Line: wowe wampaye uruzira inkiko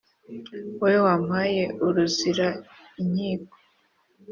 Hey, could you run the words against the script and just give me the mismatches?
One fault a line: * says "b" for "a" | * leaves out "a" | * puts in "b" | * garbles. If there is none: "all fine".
all fine